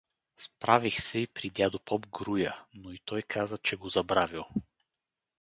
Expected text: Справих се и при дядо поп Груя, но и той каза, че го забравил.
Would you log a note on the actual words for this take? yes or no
no